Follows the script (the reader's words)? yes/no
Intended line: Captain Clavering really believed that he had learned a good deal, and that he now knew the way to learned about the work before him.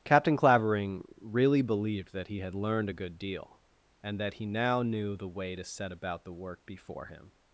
no